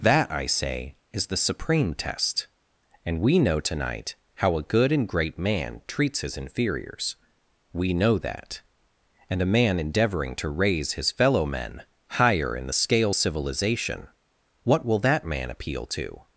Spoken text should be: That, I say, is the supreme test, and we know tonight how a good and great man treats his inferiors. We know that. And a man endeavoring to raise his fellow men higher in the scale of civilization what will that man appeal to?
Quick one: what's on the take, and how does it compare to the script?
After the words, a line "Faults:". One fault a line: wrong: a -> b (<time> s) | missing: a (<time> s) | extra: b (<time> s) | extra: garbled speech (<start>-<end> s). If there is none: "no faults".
That, I say, is the supreme test, and we know tonight how a good and great man treats his inferiors. We know that. And a man endeavoring to raise his fellow men higher in the scale civilization what will that man appeal to?
Faults:
missing: of (13.1 s)